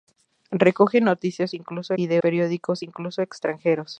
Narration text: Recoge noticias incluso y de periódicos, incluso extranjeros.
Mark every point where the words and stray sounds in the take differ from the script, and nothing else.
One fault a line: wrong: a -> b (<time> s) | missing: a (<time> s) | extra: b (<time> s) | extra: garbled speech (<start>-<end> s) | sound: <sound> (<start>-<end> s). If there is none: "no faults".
no faults